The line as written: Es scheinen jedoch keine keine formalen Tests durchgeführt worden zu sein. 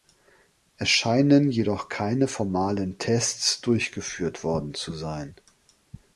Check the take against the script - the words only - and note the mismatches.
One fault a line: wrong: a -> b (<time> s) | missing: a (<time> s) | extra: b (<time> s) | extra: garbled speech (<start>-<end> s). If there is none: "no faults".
missing: keine (2.3 s)